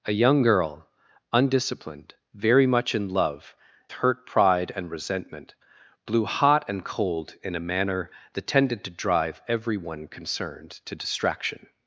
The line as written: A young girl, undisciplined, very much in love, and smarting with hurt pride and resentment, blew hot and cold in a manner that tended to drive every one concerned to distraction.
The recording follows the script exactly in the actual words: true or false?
false